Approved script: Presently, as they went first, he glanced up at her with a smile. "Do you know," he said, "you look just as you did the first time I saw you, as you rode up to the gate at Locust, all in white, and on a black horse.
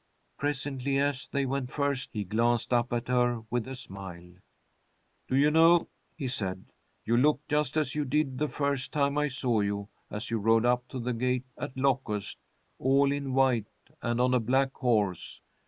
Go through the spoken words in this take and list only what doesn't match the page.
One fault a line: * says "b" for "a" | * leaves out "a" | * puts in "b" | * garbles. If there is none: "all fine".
all fine